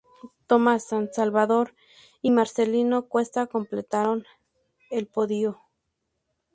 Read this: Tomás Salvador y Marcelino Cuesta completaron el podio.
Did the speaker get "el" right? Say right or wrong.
right